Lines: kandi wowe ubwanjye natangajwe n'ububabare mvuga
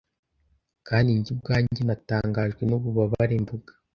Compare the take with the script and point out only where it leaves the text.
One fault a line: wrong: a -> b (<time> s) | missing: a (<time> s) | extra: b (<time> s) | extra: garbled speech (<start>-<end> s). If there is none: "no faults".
wrong: wowe -> njye (1.2 s)